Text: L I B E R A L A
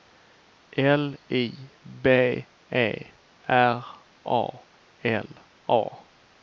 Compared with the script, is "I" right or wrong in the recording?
right